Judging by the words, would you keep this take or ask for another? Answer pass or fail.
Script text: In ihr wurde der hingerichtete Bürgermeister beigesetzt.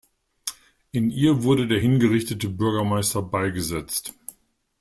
pass